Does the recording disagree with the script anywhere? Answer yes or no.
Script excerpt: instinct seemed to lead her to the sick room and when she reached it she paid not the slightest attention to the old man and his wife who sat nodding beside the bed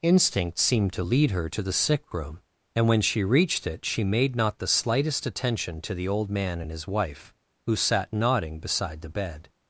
yes